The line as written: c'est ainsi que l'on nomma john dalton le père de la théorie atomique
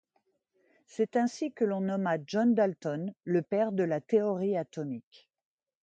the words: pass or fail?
pass